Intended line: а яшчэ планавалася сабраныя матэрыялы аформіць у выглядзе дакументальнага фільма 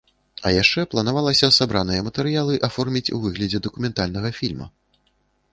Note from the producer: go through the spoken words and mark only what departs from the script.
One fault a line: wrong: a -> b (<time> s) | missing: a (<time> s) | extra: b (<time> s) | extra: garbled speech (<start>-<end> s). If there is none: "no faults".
no faults